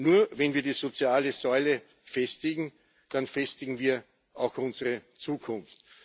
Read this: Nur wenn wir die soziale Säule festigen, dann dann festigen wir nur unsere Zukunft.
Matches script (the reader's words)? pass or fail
fail